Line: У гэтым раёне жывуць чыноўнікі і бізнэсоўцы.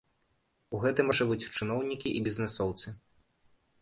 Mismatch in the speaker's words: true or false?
true